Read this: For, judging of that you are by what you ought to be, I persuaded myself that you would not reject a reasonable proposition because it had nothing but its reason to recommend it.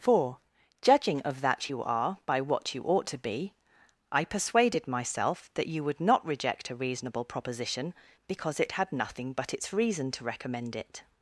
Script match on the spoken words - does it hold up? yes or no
yes